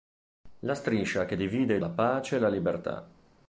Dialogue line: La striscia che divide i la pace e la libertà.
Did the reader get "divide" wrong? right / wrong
right